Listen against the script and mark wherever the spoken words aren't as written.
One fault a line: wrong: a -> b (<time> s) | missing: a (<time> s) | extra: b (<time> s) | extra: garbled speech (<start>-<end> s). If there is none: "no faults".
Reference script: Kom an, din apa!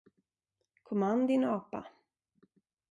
no faults